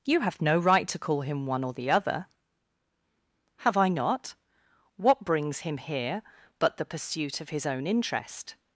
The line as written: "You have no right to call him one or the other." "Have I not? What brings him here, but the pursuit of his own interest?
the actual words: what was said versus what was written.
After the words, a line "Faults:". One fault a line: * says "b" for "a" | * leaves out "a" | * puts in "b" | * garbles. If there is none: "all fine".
"You have no right to call him one or the other." "Have I not? What brings him here, but the pursuit of his own interest?
Faults:
all fine